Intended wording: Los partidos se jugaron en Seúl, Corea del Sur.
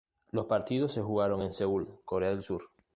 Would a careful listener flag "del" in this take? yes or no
no